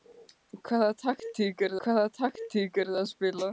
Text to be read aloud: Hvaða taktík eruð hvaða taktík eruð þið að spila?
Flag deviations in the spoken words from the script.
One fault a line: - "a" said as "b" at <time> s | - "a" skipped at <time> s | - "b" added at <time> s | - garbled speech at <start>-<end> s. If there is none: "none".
none